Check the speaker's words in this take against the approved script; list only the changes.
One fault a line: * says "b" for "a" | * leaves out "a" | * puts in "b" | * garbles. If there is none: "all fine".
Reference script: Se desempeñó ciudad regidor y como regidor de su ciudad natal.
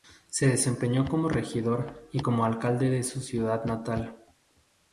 * says "como" for "ciudad"
* says "alcalde" for "regidor"